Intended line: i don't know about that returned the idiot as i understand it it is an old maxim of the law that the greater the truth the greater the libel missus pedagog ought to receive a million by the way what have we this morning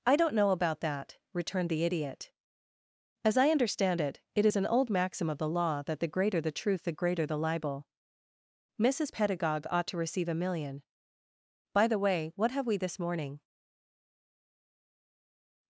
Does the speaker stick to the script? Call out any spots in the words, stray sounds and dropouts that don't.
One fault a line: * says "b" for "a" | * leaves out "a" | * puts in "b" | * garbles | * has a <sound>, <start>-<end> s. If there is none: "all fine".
all fine